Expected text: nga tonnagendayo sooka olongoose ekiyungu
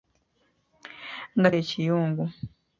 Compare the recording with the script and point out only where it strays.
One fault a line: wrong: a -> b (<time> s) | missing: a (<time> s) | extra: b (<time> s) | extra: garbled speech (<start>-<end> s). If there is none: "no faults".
missing: tonnagendayo sooka olongoose (1.5 s)